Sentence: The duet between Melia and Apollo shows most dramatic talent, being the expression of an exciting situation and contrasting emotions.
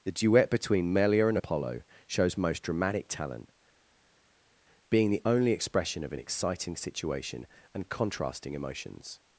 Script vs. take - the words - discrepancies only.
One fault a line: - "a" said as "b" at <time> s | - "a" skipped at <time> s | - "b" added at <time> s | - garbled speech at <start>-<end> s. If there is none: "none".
- "only" added at 5.2 s